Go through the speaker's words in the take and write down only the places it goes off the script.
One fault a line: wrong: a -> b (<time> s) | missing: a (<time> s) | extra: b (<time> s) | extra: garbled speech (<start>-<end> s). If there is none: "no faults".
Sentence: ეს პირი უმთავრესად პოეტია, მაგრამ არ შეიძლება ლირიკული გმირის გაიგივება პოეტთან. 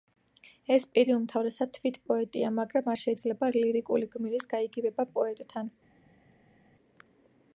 extra: თვით (1.8 s)